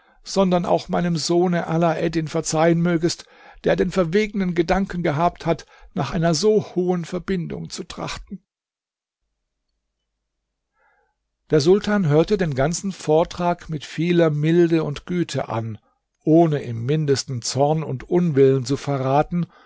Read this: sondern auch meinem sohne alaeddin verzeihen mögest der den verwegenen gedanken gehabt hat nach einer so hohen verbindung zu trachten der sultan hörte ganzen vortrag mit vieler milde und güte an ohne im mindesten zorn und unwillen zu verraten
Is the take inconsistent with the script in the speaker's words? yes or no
yes